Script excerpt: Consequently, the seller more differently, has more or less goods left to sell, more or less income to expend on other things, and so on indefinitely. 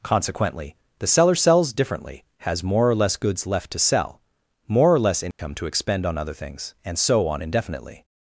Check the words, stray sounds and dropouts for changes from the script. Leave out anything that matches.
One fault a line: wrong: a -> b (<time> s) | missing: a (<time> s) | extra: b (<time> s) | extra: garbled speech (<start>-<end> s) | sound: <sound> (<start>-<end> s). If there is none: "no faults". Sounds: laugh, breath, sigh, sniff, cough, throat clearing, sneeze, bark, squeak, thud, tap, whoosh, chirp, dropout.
wrong: more -> sells (1.4 s)
sound: dropout (5.3-5.4 s)